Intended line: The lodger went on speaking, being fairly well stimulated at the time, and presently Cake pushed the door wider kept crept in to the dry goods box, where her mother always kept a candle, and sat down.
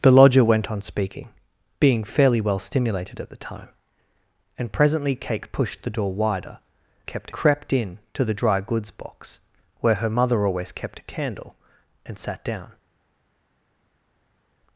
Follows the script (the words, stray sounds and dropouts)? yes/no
yes